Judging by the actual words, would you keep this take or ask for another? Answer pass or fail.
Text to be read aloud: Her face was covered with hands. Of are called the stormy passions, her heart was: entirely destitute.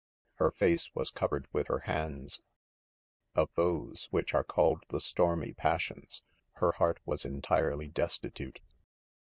fail